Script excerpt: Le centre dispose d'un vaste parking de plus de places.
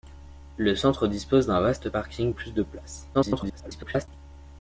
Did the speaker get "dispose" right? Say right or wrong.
right